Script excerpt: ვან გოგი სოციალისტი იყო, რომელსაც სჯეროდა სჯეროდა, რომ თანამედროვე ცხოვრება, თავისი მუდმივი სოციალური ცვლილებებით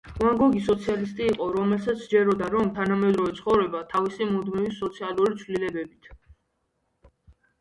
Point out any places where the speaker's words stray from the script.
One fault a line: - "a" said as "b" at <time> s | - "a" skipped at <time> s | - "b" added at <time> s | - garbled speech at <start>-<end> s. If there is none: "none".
- "სჯეროდა" skipped at 2.5 s